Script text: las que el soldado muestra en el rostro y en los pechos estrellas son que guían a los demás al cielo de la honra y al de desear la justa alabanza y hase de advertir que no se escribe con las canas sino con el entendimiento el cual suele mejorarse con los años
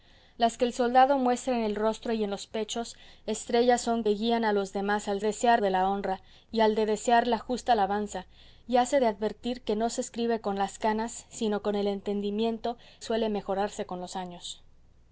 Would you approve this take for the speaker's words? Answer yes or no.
no